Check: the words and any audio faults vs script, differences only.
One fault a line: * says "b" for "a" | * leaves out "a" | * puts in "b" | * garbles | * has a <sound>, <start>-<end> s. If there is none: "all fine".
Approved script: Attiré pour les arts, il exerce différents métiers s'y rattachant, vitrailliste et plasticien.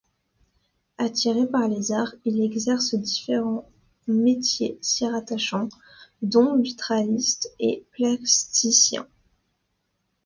* says "par" for "pour"
* puts in "dont"